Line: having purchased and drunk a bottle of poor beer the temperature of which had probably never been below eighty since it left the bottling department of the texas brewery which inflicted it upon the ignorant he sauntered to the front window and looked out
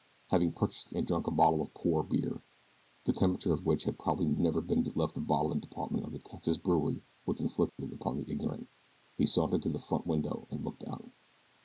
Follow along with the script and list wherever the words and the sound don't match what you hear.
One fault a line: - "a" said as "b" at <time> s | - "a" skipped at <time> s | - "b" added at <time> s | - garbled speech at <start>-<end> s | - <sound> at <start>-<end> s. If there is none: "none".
- "below eighty since" skipped at 4.8 s
- dropout at 7.7-7.8 s